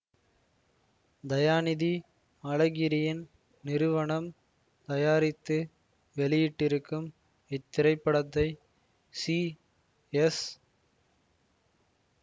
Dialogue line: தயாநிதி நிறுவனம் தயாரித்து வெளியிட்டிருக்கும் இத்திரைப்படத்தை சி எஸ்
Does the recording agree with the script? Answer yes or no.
no